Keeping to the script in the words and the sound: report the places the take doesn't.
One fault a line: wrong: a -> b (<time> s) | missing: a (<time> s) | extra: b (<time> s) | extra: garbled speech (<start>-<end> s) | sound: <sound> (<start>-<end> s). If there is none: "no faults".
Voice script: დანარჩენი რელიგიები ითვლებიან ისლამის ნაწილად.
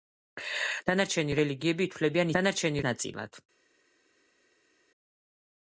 wrong: ისლამის -> დანარჩენი (2.3 s)